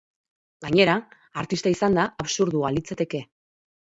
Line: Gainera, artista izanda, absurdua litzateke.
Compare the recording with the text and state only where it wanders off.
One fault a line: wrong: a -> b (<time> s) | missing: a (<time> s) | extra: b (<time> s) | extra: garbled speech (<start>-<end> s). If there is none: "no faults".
no faults